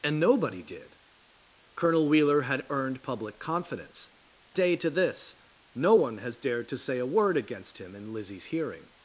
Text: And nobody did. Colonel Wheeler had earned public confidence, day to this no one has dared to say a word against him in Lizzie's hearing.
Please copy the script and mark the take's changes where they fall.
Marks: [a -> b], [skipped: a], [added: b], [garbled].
And nobody did. Colonel Wheeler had earned public confidence, day to this no one has dared to say a word against him in Lizzie's hearing.